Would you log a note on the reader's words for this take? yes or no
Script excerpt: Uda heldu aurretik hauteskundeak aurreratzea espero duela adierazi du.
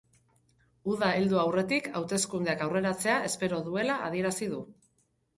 no